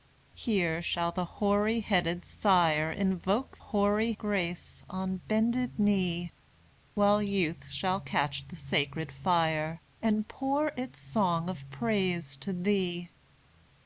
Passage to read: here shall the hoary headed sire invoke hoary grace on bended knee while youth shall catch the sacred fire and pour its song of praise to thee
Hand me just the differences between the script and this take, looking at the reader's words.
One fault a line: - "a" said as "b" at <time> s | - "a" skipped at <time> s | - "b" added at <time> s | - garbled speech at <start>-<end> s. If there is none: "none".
none